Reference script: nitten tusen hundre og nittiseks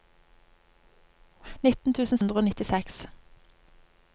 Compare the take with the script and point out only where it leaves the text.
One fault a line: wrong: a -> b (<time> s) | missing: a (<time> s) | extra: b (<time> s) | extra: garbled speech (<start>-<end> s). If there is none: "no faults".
no faults